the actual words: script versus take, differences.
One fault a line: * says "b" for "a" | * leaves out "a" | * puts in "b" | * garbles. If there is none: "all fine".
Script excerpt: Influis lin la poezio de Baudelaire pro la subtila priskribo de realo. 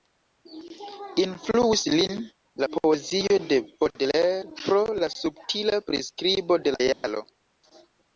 all fine